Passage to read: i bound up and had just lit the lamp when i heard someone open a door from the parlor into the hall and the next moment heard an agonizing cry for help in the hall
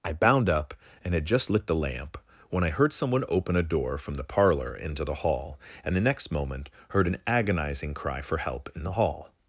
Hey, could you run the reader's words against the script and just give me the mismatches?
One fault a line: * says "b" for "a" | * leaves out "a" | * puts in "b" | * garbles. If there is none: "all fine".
all fine